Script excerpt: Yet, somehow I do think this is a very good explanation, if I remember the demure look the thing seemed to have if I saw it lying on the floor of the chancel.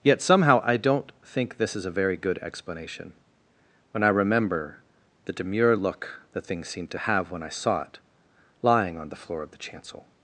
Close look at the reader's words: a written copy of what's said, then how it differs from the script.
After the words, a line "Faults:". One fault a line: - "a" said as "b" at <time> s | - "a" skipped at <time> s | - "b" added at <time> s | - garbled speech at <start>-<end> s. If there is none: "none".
Yet, somehow I don't think this is a very good explanation, when I remember the demure look the thing seemed to have when I saw it lying on the floor of the chancel.
Faults:
- "do" said as "don't" at 0.8 s
- "if" said as "when" at 3.9 s
- "if" said as "when" at 7.3 s